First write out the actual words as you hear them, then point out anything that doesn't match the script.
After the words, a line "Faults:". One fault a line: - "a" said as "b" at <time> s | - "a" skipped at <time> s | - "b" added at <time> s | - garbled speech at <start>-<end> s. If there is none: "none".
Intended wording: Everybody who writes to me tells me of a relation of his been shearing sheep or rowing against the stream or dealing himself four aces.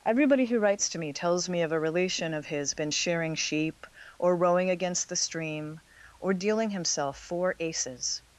Everybody who writes to me tells me of a relation of his been shearing sheep or rowing against the stream or dealing himself four aces.
Faults:
none